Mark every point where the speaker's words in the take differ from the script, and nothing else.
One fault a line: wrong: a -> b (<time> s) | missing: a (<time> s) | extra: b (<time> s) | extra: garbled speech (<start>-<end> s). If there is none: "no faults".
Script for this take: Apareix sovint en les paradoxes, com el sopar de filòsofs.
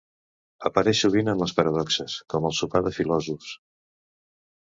no faults